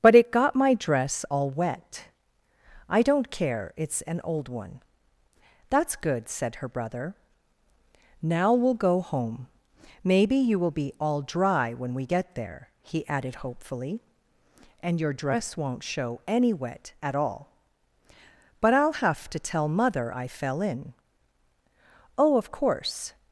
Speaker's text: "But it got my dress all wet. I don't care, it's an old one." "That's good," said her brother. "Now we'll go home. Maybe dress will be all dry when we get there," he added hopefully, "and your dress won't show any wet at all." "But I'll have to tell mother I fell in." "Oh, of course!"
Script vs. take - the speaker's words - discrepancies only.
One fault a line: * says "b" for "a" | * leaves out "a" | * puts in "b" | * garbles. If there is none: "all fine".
* says "you" for "dress"